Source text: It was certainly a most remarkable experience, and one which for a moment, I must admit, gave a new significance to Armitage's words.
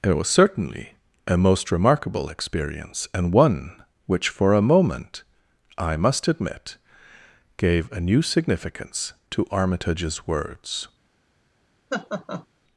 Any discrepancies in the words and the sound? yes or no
yes